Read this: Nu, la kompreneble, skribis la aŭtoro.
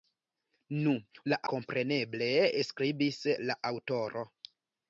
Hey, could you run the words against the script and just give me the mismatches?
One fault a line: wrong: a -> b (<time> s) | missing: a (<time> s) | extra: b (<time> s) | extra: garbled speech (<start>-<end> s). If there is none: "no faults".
no faults